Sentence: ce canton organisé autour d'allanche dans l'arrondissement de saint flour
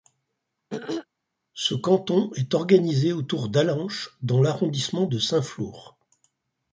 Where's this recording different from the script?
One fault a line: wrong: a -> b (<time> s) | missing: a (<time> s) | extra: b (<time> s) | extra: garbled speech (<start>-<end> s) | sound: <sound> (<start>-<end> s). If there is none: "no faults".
sound: throat clearing (0.7-1.1 s)
extra: est (2.3 s)